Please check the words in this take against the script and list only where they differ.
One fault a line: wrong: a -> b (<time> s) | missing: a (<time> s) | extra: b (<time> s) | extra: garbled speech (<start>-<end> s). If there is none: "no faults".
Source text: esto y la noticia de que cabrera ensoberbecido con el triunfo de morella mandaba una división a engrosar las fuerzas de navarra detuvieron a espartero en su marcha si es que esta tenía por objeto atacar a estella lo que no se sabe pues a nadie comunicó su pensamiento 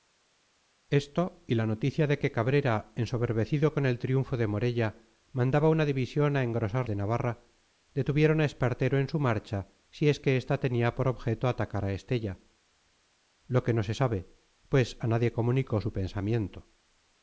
missing: las fuerzas (6.9 s)